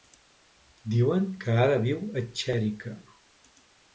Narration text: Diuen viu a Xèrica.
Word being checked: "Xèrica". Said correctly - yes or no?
yes